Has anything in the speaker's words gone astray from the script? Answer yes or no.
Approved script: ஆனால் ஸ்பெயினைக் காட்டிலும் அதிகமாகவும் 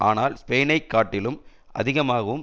no